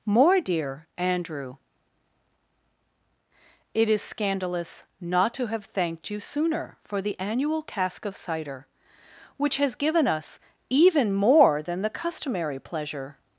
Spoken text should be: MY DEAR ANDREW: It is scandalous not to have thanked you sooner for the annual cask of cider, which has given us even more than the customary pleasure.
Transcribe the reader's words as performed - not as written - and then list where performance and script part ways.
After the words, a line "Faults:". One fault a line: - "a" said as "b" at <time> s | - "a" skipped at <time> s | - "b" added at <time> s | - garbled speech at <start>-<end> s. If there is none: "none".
More DEAR ANDREW: It is scandalous not to have thanked you sooner for the annual cask of cider, which has given us even more than the customary pleasure.
Faults:
- "MY" said as "More" at 0.1 s